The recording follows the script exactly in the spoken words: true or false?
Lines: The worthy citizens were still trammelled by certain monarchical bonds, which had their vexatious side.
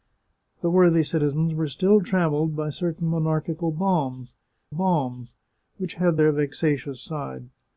false